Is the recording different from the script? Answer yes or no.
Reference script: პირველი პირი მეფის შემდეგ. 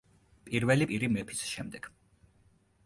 no